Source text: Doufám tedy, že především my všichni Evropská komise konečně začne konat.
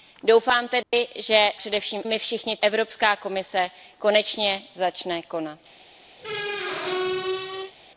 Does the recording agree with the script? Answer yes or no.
yes